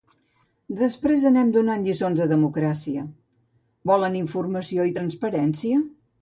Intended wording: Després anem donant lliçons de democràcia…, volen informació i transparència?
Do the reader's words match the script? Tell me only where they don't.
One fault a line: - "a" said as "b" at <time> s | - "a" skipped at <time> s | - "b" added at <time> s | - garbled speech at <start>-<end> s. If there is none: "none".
none